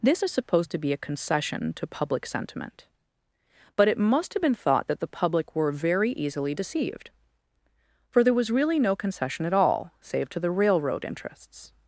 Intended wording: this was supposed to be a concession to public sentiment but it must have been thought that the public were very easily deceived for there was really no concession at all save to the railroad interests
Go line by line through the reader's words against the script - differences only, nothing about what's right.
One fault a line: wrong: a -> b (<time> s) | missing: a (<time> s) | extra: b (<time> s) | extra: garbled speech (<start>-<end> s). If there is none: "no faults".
wrong: was -> is (0.2 s)